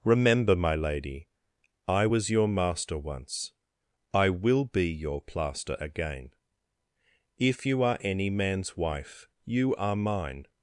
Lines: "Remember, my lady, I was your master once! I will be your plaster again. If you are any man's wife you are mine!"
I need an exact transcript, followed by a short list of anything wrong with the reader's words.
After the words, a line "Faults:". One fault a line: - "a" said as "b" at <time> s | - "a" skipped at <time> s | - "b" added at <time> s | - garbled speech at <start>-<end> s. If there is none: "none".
"Remember, my lady, I was your master once! I will be your plaster again. If you are any man's wife you are mine!"
Faults:
none